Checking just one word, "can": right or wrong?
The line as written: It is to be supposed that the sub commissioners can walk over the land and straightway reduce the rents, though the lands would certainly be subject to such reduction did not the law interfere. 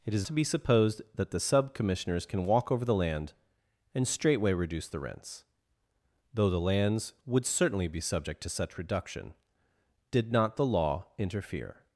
right